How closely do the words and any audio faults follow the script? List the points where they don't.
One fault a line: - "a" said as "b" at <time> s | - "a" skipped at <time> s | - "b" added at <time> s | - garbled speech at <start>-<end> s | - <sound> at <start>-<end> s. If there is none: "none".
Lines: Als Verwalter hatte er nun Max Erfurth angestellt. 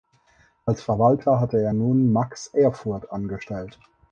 none